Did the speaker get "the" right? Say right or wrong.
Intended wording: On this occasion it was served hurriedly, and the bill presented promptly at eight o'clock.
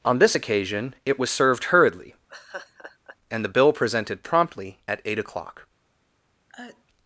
right